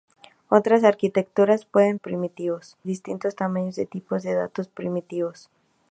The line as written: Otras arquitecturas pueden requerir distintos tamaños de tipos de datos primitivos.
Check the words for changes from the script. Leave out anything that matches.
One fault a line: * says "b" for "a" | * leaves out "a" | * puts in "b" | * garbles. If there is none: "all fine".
* says "primitivos" for "requerir"